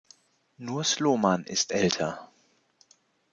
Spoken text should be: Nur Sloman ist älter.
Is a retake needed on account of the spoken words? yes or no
no